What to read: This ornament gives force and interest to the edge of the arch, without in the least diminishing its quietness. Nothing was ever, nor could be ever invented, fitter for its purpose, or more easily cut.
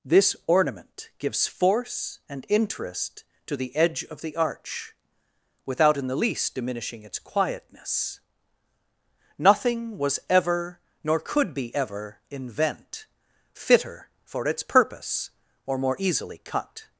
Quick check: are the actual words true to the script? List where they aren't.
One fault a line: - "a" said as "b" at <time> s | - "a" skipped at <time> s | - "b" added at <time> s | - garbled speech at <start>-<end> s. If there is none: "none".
- "invented" said as "invent" at 12.3 s